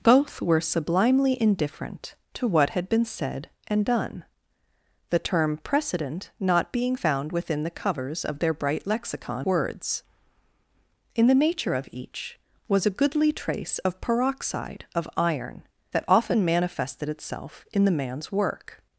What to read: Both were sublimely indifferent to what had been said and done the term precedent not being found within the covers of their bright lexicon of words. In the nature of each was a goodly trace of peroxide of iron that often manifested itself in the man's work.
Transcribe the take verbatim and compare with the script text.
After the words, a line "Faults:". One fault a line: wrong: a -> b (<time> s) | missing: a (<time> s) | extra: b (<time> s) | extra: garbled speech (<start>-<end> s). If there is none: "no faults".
Both were sublimely indifferent to what had been said and done the term precedent not being found within the covers of their bright lexicon words. In the nature of each was a goodly trace of peroxide of iron that often manifested itself in the man's work.
Faults:
missing: of (9.5 s)